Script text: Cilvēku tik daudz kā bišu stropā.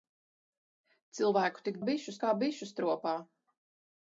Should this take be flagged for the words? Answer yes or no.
yes